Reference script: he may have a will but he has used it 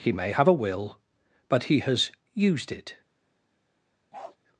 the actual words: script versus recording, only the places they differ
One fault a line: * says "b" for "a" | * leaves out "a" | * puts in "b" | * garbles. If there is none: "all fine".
all fine